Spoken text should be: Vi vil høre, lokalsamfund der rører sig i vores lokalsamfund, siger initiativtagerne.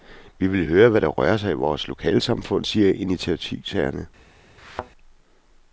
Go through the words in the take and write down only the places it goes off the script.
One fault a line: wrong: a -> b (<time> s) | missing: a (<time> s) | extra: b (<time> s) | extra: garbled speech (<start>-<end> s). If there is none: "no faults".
wrong: lokalsamfund -> hvad (0.9 s)